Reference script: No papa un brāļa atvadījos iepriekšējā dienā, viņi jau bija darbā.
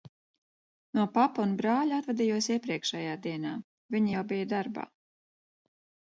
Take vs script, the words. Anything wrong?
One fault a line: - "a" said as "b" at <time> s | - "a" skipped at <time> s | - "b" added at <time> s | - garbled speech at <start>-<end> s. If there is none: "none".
none